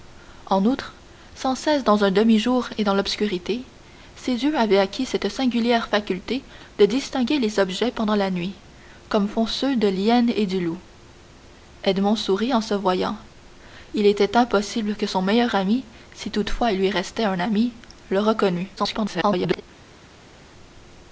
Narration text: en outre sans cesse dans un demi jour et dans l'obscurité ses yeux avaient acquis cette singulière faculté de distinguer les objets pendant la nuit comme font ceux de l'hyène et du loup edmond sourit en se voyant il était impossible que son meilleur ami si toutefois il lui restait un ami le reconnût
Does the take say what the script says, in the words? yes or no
no